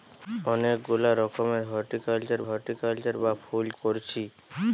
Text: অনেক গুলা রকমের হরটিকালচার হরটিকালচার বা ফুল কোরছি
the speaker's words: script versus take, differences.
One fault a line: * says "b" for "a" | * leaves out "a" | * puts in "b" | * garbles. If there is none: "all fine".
all fine